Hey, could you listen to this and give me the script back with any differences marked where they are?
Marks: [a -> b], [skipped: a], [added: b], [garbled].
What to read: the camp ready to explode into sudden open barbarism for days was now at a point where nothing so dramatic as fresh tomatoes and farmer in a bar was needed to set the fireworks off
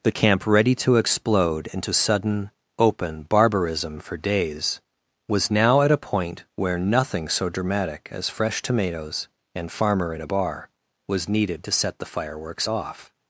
the camp ready to explode into sudden open barbarism for days was now at a point where nothing so dramatic as fresh tomatoes and farmer in a bar was needed to set the fireworks off